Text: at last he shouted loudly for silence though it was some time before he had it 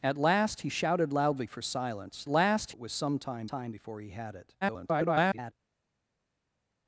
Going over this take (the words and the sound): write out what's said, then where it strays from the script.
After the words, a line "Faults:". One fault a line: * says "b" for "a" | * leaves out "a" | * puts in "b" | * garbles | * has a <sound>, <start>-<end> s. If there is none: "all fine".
at last he shouted loudly for silence last it was some time time before he had it [garbled]
Faults:
* says "last" for "though"
* puts in "time"
* garbles